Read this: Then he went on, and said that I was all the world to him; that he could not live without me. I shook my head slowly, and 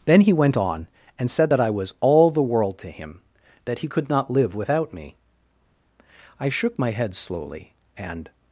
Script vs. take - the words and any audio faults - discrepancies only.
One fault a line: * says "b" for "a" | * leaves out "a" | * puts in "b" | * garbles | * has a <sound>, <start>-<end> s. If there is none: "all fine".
all fine